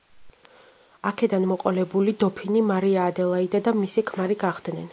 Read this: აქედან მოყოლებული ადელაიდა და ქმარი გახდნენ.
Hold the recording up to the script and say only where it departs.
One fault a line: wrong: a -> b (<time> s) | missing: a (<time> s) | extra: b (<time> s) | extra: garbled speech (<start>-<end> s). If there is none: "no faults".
extra: დოფინი მარია (2.2 s)
extra: მისი (3.8 s)